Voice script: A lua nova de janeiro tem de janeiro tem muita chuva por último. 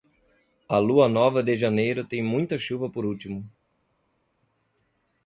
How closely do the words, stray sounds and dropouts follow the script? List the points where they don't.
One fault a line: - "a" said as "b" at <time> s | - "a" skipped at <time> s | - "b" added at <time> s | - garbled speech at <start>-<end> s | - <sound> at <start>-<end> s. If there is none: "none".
- "de janeiro tem" skipped at 2.2 s